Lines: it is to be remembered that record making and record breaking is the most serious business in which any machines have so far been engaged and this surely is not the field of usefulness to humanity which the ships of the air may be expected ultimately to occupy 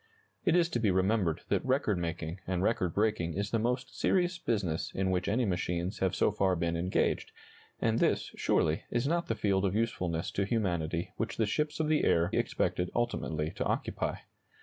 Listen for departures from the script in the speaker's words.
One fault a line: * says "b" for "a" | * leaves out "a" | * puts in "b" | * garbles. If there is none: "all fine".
* leaves out "may be"